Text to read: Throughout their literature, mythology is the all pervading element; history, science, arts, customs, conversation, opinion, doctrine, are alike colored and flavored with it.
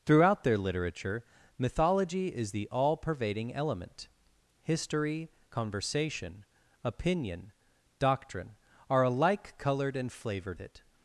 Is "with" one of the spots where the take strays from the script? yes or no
yes